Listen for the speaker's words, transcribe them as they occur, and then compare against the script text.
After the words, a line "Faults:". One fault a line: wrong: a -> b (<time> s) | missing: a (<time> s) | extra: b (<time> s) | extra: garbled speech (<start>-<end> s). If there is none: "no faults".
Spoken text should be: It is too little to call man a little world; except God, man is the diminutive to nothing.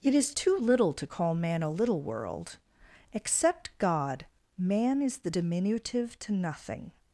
It is too little to call man a little world; except God, man is the diminutive to nothing.
Faults:
no faults